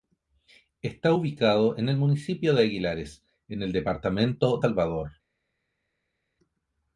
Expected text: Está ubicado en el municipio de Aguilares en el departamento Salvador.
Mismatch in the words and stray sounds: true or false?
false